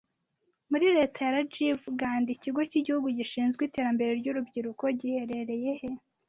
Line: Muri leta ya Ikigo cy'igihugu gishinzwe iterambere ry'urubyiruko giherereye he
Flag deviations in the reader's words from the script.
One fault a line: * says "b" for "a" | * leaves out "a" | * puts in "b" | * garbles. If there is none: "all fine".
* puts in "Rajiv Gandhi"